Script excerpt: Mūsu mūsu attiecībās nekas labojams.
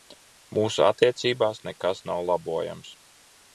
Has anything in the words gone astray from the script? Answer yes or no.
yes